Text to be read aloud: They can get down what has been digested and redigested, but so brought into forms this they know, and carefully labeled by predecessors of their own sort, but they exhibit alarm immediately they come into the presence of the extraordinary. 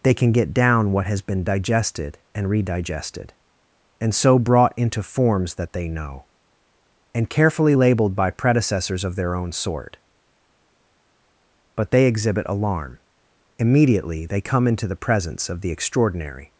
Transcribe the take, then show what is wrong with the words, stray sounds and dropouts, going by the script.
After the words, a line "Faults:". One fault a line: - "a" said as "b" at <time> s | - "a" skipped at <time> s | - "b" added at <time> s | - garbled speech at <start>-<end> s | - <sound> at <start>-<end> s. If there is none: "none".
They can get down what has been digested and redigested, and so brought into forms that they know, and carefully labeled by predecessors of their own sort, but they exhibit alarm immediately they come into the presence of the extraordinary.
Faults:
- "but" said as "and" at 4.0 s
- "this" said as "that" at 5.5 s